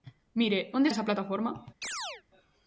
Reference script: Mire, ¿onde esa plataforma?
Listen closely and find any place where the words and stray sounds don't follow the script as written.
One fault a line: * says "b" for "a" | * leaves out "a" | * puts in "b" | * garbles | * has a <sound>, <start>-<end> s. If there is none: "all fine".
* has a chirp, 1.8-2.2 s